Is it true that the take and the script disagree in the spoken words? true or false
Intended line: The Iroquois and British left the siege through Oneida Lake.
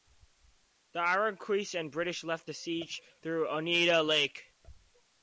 false